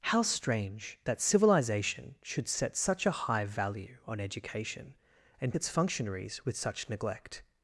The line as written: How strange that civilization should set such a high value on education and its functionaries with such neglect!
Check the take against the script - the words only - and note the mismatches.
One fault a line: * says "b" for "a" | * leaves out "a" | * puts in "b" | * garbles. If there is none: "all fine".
all fine